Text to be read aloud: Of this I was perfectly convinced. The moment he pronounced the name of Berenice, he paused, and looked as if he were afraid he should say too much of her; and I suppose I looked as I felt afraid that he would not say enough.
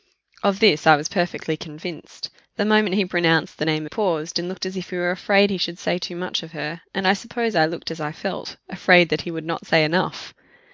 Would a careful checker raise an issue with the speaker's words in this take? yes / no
yes